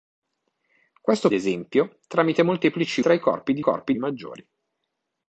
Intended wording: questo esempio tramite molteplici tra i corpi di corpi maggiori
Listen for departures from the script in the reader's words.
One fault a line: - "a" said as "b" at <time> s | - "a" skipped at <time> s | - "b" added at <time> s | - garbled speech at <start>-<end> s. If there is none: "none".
none